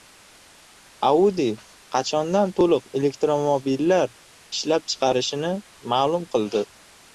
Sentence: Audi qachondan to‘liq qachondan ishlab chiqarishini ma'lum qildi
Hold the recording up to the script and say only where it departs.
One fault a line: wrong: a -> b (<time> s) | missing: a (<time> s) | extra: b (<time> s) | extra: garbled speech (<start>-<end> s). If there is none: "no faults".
wrong: qachondan -> elektromobillar (3.0 s)